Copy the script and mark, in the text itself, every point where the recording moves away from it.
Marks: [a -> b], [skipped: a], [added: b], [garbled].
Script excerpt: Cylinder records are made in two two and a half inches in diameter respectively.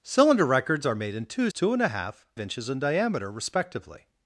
Cylinder records are made in two two and a half inches in diameter respectively.